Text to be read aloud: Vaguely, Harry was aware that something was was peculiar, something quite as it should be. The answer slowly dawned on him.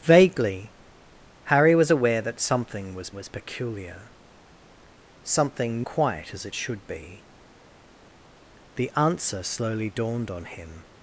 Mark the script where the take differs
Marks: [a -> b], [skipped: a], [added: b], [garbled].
Vaguely, Harry was aware that something was was peculiar, something quite as it should be. The answer slowly dawned on him.